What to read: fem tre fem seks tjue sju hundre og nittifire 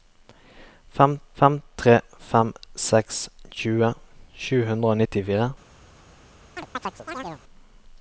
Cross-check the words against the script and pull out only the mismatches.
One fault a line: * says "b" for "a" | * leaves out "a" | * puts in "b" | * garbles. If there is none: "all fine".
* puts in "fem"